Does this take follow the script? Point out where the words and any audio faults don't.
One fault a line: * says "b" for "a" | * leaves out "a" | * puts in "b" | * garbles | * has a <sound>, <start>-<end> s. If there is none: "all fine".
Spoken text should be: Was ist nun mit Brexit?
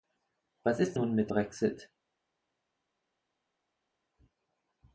all fine